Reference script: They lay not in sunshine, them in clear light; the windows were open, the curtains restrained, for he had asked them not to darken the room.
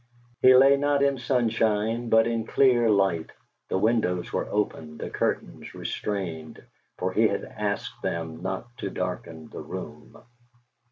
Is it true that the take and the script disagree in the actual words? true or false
true